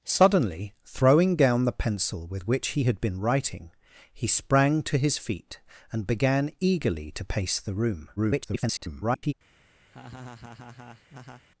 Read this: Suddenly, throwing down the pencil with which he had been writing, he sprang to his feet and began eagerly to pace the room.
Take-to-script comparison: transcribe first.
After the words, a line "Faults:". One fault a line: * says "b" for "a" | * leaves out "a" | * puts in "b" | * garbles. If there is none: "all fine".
Suddenly, throwing down the pencil with which he had been writing, he sprang to his feet and began eagerly to pace the room. [garbled]
Faults:
* garbles